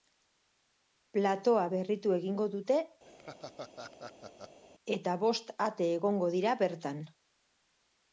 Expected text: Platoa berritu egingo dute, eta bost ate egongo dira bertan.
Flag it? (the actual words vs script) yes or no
no